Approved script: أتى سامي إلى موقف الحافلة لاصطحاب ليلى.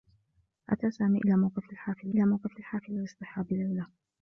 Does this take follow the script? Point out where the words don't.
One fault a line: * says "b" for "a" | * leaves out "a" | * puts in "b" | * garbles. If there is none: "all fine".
* puts in "إلى موقف الحافلة"